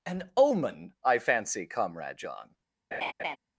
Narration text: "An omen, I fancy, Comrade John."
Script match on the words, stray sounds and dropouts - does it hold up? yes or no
no